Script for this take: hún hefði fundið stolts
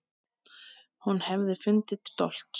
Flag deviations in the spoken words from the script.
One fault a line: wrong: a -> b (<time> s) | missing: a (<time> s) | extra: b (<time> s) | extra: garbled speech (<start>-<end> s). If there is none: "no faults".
no faults